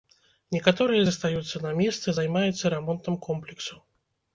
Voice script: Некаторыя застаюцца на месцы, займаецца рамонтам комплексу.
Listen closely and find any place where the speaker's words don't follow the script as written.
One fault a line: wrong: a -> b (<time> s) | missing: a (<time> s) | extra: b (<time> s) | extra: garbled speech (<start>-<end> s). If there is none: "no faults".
no faults